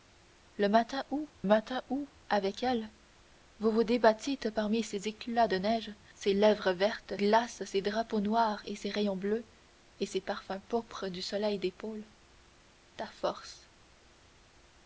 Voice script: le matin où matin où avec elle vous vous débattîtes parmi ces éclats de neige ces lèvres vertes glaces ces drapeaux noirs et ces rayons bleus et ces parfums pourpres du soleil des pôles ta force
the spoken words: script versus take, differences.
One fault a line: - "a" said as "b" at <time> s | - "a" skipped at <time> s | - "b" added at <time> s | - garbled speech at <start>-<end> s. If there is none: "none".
none